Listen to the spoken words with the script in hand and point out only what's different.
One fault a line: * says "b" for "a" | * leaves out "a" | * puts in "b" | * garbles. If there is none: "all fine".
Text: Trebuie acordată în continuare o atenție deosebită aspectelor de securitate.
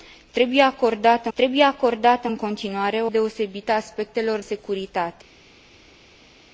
* puts in "trebuie acordată"
* leaves out "atenție"
* leaves out "de"